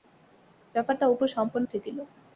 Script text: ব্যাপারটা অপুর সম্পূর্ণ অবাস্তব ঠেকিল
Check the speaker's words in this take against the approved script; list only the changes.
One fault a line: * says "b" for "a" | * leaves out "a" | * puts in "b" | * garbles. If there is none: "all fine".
* leaves out "অবাস্তব"